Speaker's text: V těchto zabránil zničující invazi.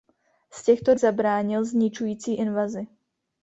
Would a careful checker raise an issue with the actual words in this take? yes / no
no